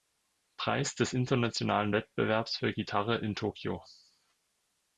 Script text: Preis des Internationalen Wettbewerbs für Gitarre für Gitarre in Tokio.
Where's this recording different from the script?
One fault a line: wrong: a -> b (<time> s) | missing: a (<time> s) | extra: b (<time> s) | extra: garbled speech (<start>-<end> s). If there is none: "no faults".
missing: für Gitarre (3.2 s)